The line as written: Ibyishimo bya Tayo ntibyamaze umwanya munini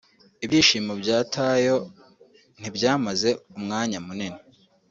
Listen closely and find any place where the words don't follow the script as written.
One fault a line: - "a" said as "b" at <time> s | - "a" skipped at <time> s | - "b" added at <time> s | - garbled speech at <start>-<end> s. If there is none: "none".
none